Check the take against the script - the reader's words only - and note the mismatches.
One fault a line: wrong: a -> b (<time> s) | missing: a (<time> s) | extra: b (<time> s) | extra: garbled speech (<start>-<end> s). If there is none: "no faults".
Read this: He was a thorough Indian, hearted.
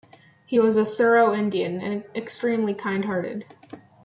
extra: and extremely kind (1.8 s)